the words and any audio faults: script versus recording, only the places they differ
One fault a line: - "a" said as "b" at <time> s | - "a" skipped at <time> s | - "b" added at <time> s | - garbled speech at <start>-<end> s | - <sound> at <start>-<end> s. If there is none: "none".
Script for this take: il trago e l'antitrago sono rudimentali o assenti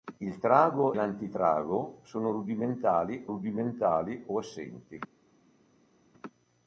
- "e" skipped at 0.9 s
- "rudimentali" added at 3.2 s